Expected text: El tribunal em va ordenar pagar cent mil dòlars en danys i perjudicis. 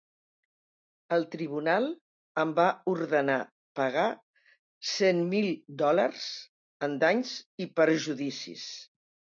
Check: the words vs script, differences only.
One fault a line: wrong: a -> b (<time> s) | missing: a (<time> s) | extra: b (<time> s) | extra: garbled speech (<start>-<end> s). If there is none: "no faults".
no faults